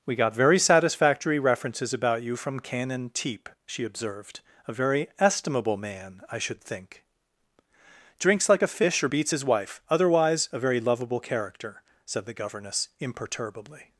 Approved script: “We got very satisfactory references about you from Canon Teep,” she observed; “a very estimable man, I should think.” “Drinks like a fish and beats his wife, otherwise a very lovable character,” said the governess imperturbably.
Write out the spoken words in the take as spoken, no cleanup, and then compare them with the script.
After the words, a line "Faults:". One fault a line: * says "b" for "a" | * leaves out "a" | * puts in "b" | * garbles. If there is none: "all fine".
“We got very satisfactory references about you from Canon Teep,” she observed; “a very estimable man, I should think.” “Drinks like a fish or beats his wife, otherwise a very lovable character,” said the governess imperturbably.
Faults:
* says "or" for "and"